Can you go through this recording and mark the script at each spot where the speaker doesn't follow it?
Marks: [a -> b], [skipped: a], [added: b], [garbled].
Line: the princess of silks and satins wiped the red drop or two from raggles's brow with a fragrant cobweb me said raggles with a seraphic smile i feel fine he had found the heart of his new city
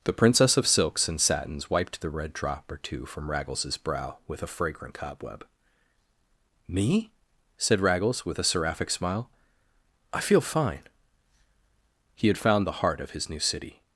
the princess of silks and satins wiped the red drop or two from raggles's brow with a fragrant cobweb me said raggles with a seraphic smile i feel fine he had found the heart of his new city